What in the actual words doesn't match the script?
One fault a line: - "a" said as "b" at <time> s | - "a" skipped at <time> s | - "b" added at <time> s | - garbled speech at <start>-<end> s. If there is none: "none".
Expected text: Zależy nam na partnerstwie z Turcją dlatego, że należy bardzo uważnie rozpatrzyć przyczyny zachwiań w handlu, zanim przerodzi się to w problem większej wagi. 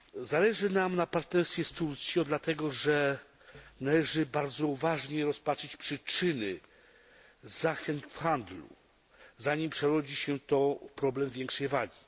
none